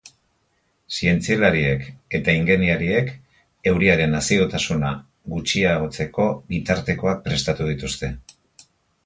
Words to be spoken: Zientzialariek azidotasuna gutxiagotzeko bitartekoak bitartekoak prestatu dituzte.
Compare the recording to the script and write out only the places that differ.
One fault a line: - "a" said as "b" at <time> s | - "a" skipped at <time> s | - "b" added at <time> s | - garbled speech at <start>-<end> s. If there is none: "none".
- "eta ingeniariek euriaren" added at 2.2 s
- "bitartekoak" skipped at 7.2 s